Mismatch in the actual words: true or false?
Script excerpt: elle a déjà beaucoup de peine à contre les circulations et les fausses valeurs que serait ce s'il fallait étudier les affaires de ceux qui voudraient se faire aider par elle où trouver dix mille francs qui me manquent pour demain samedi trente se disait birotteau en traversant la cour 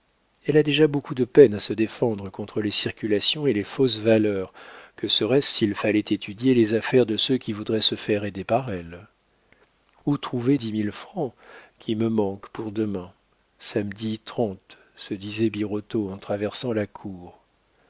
true